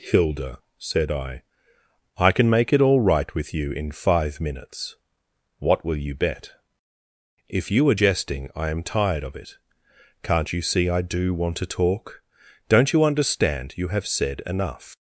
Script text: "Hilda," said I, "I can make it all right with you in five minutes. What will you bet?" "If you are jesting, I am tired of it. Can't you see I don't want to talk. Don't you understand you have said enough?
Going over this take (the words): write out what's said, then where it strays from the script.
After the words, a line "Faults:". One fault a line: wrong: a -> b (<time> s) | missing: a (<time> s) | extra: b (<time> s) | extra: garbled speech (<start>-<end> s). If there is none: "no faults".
"Hilda," said I, "I can make it all right with you in five minutes. What will you bet?" "If you are jesting, I am tired of it. Can't you see I do want to talk. Don't you understand you have said enough?
Faults:
wrong: don't -> do (11.0 s)